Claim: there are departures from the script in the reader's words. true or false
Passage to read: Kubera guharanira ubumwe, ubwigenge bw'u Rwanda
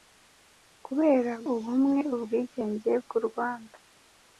true